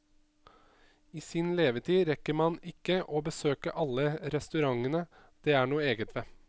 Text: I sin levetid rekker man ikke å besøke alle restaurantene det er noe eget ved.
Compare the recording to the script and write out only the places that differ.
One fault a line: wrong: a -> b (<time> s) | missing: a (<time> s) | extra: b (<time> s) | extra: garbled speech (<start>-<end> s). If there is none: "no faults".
no faults